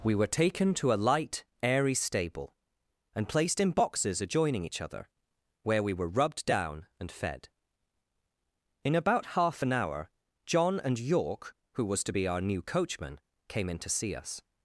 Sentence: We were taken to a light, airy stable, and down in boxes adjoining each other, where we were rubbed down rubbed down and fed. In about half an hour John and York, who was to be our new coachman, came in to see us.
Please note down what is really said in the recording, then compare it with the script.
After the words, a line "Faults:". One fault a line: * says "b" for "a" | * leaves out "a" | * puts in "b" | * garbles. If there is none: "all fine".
We were taken to a light, airy stable, and placed in boxes adjoining each other, where we were rubbed down and fed. In about half an hour John and York, who was to be our new coachman, came in to see us.
Faults:
* says "placed" for "down"
* leaves out "rubbed down"